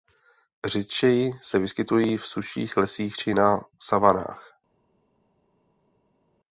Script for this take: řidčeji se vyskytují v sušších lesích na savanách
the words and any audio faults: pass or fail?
fail